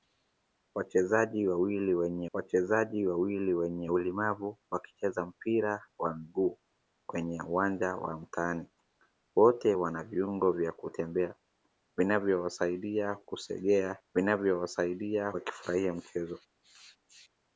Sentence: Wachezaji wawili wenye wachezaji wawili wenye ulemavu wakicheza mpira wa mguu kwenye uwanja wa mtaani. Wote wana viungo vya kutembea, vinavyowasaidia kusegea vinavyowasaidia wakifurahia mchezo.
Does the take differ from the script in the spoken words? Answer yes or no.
no